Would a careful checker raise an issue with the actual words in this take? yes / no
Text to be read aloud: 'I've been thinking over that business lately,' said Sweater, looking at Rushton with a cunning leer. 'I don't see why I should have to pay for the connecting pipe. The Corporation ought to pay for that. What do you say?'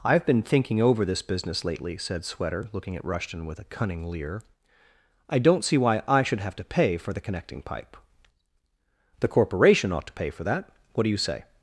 yes